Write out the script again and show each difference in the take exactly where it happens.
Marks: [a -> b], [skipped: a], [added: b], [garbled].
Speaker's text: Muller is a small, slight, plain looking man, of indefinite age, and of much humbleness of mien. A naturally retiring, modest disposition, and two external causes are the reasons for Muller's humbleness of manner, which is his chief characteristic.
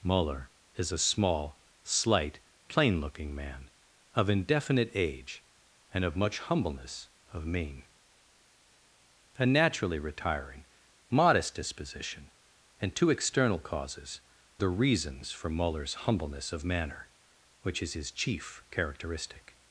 Muller is a small, slight, plain looking man, of indefinite age, and of much humbleness of mien. A naturally retiring, modest disposition, and two external causes [skipped: are] the reasons for Muller's humbleness of manner, which is his chief characteristic.